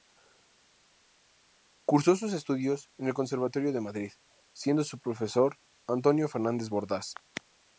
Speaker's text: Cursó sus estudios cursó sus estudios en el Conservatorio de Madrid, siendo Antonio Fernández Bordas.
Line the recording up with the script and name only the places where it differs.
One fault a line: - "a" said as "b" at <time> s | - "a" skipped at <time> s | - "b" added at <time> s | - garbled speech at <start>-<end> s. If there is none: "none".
- "cursó sus estudios" skipped at 2.9 s
- "su profesor" added at 4.9 s